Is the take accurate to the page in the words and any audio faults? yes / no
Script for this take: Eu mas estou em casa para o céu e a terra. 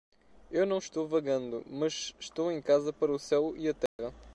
no